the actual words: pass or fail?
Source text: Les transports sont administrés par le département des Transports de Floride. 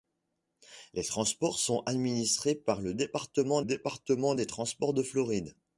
fail